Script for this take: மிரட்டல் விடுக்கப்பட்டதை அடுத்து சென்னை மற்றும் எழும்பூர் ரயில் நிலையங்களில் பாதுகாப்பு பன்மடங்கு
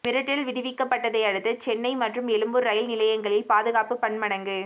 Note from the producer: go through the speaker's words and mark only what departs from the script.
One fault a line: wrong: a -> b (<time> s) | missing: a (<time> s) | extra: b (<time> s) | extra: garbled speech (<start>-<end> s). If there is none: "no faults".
no faults